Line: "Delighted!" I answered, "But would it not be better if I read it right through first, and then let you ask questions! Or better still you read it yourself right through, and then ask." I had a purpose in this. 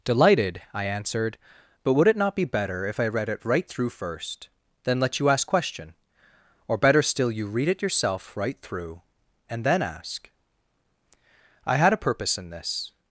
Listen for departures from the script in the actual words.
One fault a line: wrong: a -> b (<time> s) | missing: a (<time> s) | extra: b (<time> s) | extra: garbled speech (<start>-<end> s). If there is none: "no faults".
missing: and (4.5 s)
wrong: questions -> question (5.5 s)